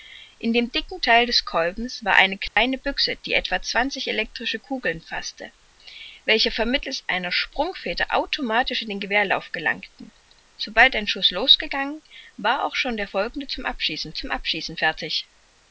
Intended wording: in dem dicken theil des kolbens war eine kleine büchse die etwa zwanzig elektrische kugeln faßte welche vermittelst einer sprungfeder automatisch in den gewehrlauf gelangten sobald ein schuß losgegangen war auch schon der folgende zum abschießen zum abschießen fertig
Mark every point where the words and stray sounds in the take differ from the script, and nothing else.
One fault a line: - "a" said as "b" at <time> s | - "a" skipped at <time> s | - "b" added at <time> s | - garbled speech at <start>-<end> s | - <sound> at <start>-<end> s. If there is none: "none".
- dropout at 2.5-2.6 s